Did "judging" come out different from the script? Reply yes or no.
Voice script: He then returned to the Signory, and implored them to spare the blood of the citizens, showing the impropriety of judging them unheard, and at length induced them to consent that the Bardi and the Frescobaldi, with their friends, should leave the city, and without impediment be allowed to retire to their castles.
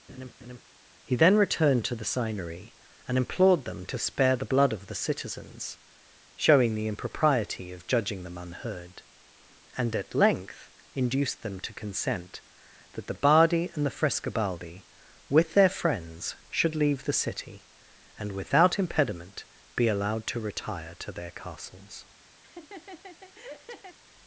no